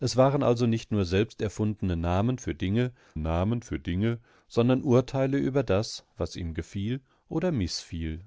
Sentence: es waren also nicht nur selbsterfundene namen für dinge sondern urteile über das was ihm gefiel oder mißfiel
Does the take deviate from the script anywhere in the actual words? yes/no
yes